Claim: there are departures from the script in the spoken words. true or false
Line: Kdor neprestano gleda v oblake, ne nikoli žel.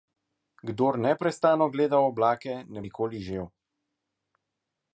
false